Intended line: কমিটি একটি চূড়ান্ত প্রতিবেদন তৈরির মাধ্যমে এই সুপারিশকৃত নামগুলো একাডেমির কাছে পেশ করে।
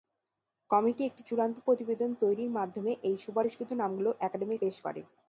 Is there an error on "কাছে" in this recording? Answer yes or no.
yes